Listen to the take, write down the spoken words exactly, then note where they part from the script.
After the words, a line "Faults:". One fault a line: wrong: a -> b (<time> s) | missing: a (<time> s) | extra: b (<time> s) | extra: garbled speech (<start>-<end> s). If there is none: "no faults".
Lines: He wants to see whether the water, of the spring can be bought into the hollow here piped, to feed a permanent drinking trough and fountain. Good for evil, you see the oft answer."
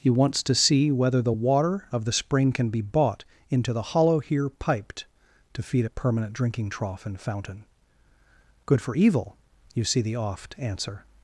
He wants to see whether the water, of the spring can be bought into the hollow here piped, to feed a permanent drinking trough and fountain. Good for evil, you see the oft answer."
Faults:
no faults